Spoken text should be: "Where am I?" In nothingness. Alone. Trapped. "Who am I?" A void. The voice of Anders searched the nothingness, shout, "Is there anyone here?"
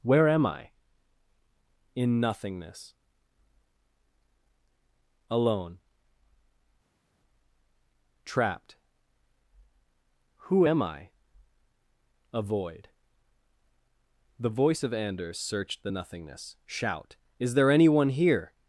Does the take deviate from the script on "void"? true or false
false